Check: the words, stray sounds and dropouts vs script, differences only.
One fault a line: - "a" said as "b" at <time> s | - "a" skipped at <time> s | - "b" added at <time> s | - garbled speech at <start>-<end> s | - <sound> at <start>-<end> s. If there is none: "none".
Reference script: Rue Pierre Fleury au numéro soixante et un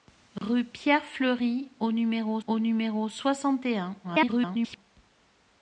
- dropout at 0.4-0.4 s
- "au numéro" added at 2.5 s
- garbled speech at 4.0-4.8 s